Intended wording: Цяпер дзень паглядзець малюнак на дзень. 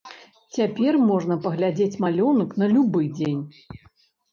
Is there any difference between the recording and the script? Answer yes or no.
yes